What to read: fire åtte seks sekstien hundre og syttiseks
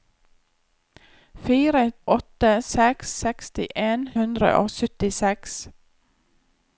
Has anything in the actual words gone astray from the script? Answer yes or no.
no